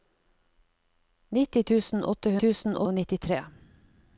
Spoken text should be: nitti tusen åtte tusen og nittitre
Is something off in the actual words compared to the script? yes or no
no